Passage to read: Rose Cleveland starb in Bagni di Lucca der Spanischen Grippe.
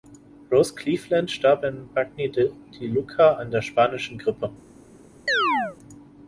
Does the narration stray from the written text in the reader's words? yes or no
yes